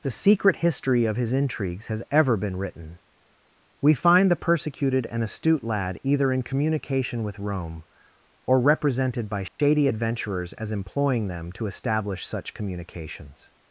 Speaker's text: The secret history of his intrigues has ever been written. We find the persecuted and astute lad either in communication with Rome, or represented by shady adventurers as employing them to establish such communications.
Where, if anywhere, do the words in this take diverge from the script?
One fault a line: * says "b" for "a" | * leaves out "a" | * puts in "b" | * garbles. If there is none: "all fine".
all fine